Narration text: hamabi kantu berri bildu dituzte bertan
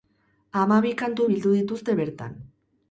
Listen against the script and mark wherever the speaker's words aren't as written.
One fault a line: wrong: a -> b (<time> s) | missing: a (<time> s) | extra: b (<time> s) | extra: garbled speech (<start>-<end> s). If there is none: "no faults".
missing: berri (1.3 s)